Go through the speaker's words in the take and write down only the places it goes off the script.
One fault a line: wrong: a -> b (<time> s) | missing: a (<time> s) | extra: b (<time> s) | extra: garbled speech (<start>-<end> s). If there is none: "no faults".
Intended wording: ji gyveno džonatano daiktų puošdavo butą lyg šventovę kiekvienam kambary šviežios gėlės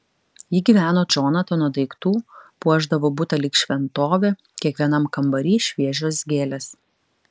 no faults